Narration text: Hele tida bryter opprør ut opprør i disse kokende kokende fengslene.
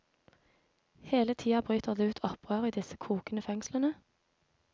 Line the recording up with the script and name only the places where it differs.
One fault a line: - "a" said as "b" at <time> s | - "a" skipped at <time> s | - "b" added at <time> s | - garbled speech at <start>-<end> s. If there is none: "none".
- "opprør" said as "det" at 1.9 s
- "kokende" skipped at 3.4 s